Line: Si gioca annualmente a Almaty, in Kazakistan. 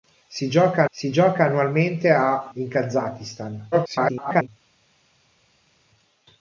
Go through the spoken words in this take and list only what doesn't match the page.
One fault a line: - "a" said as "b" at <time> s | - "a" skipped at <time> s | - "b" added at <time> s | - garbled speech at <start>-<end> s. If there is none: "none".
- "si gioca" added at 0.9 s
- "Almaty" skipped at 2.5 s
- garbled speech at 3.7-4.5 s